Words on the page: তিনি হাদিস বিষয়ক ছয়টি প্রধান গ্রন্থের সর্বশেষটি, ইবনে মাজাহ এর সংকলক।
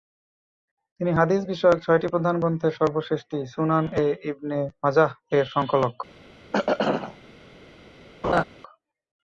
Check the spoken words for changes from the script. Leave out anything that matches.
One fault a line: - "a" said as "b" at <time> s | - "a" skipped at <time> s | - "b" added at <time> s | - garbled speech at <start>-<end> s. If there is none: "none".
- "সুনান এ" added at 3.5 s